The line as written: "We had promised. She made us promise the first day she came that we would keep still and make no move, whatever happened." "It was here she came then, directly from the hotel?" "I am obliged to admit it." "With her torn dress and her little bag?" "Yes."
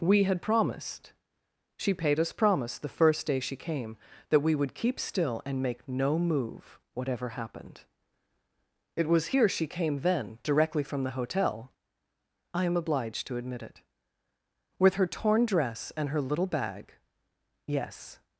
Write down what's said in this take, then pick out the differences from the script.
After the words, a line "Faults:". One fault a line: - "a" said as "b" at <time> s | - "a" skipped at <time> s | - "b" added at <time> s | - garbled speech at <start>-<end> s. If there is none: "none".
"We had promised. She paid us promise the first day she came that we would keep still and make no move, whatever happened." "It was here she came then, directly from the hotel?" "I am obliged to admit it." "With her torn dress and her little bag?" "Yes."
Faults:
- "made" said as "paid" at 1.9 s